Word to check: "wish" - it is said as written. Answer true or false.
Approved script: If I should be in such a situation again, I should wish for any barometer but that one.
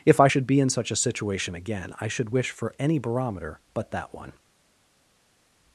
true